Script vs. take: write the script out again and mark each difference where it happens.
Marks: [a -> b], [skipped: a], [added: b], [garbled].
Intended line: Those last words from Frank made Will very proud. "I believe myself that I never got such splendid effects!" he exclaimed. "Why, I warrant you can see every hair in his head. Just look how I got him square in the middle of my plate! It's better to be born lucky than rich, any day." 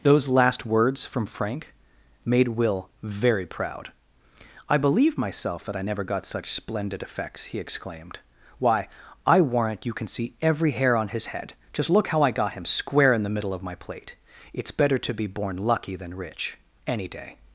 Those last words from Frank made Will very proud. "I believe myself that I never got such splendid effects!" he exclaimed. "Why, I warrant you can see every hair [in -> on] his head. Just look how I got him square in the middle of my plate! It's better to be born lucky than rich, any day."